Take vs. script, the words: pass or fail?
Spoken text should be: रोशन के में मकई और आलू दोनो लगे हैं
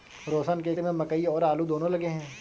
pass